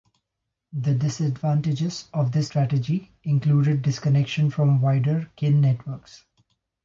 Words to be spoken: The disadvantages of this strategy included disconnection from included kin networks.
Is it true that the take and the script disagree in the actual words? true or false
true